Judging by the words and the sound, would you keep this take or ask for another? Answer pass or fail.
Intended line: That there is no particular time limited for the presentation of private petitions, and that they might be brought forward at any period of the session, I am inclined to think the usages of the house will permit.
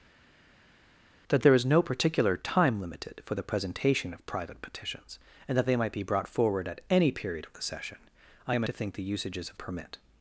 fail